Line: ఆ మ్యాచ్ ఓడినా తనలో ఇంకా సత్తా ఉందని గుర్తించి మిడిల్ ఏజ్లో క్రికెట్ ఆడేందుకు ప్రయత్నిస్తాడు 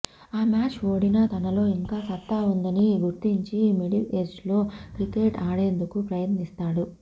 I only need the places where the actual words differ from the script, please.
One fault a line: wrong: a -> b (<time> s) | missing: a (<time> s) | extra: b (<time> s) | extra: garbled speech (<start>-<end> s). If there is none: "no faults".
no faults